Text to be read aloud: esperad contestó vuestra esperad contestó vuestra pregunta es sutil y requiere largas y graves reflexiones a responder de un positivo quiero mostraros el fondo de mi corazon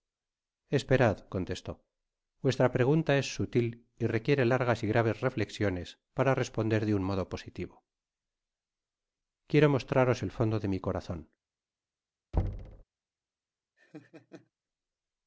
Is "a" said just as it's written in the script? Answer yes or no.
no